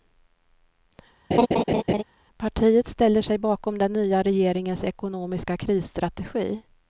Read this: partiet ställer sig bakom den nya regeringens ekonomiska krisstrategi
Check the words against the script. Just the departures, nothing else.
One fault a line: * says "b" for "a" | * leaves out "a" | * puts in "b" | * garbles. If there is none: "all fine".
all fine